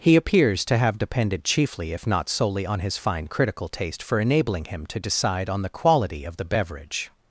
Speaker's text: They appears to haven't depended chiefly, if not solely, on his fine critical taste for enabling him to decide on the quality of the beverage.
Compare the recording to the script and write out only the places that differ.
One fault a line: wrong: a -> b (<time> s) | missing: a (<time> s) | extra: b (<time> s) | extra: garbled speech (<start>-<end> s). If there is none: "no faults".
wrong: They -> He (0.0 s)
wrong: haven't -> have (0.8 s)